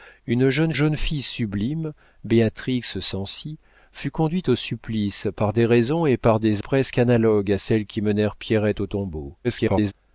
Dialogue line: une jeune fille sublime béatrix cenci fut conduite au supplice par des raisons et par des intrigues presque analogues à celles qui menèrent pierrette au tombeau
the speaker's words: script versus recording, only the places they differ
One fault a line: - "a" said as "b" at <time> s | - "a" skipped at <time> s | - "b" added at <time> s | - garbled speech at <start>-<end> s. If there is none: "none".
- "jeune" added at 0.7 s
- "intrigues" skipped at 6.6 s
- garbled speech at 9.4-9.9 s